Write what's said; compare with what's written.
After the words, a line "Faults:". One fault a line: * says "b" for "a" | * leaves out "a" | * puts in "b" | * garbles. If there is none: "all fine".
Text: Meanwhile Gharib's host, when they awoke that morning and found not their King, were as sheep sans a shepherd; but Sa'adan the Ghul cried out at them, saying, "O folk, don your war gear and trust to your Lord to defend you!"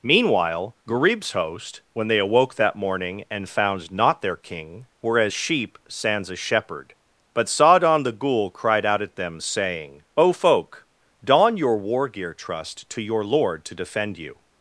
Meanwhile Gharib's host, when they awoke that morning and found not their King, were as sheep sans a shepherd; but Sa'adan the Ghul cried out at them, saying, "O folk, don your war gear trust to your Lord to defend you!"
Faults:
* leaves out "and"